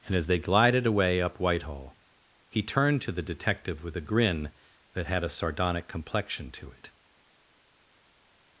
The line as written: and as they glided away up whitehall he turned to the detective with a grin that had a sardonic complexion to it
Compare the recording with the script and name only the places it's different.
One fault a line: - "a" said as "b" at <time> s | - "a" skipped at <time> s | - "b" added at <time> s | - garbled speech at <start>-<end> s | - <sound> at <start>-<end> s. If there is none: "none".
none